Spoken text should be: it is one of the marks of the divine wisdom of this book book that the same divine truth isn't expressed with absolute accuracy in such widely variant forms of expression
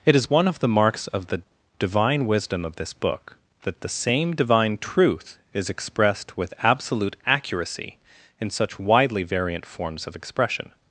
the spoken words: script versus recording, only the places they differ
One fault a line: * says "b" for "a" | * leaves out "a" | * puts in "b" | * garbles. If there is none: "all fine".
* leaves out "book"
* says "is" for "isn't"